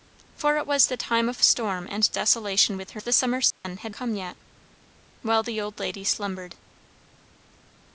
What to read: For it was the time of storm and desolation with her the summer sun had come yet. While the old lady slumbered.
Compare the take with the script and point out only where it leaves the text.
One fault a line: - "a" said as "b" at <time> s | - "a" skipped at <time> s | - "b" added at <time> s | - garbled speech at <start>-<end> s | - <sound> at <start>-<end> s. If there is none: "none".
- dropout at 3.5-3.6 s